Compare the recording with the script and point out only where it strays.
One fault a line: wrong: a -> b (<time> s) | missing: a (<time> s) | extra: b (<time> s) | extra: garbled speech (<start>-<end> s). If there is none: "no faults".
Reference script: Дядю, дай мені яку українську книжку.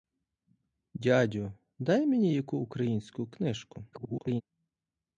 extra: garbled speech (3.9-4.4 s)